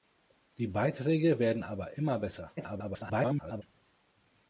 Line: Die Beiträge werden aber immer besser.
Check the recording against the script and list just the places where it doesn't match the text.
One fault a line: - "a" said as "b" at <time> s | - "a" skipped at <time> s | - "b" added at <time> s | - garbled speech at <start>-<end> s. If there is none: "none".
- garbled speech at 2.6-3.6 s